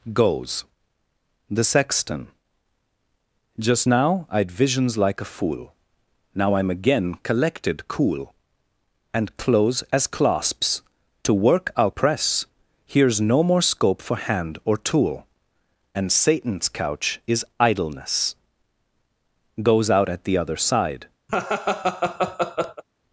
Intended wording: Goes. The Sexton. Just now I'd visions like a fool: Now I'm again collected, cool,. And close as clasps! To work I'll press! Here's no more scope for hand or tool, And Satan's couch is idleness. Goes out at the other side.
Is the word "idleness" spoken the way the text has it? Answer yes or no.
yes